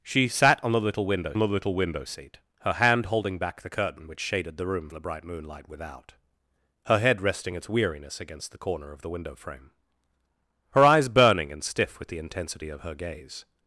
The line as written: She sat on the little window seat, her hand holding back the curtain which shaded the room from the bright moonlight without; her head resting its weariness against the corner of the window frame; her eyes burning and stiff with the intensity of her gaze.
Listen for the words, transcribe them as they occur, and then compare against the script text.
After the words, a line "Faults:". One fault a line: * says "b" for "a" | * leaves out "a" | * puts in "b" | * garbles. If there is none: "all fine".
She sat on the little window the little window seat, her hand holding back the curtain which shaded the room the bright moonlight without; her head resting its weariness against the corner of the window frame; her eyes burning and stiff with the intensity of her gaze.
Faults:
* puts in "the little window"
* leaves out "from"